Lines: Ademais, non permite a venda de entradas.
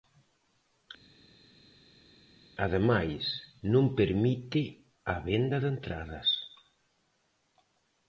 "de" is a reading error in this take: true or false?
false